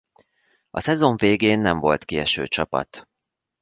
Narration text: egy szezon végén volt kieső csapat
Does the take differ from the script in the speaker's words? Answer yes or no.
yes